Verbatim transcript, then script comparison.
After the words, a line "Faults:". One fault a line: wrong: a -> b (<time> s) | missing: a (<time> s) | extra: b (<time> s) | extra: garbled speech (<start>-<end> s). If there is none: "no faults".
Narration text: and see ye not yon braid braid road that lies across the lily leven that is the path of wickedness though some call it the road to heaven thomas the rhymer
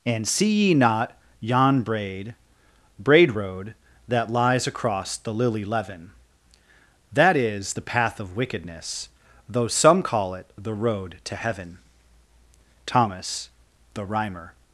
and see ye not yon braid braid road that lies across the lily leven that is the path of wickedness though some call it the road to heaven thomas the rhymer
Faults:
no faults